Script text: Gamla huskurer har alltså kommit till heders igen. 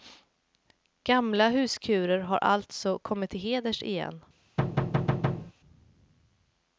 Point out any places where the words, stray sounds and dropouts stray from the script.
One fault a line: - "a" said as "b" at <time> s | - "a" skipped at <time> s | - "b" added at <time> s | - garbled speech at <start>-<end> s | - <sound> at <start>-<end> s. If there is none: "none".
- thud at 4.6-5.5 s